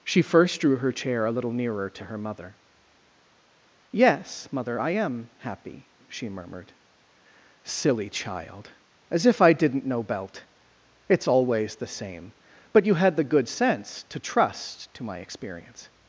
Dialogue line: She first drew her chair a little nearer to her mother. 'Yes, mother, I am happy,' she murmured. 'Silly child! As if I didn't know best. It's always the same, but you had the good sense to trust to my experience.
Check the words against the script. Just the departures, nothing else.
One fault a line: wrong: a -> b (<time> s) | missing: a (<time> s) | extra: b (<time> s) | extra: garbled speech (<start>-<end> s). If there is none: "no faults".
wrong: best -> belt (10.0 s)